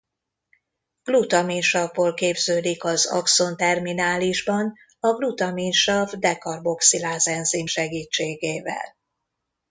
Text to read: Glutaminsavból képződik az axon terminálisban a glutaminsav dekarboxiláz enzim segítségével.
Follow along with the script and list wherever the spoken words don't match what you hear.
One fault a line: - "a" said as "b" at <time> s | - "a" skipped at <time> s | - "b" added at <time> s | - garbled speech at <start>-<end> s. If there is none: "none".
none